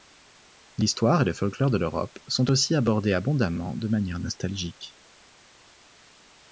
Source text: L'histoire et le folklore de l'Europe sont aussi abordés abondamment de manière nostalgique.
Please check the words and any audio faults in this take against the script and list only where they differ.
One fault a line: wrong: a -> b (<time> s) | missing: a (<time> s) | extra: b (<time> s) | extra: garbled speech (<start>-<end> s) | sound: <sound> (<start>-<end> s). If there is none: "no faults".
no faults